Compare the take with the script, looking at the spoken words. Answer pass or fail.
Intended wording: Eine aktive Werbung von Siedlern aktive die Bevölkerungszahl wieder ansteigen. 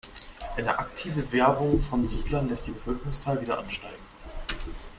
fail